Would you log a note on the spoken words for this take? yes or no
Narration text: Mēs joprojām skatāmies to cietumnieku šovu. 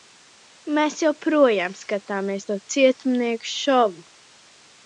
no